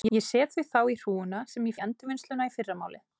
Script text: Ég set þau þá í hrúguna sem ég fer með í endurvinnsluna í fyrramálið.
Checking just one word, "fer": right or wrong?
wrong